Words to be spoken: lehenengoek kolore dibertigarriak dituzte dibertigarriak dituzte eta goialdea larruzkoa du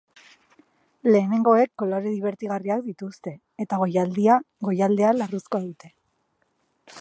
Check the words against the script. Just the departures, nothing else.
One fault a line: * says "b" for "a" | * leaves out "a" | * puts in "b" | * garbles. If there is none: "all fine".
* leaves out "dibertigarriak dituzte"
* says "dute" for "du"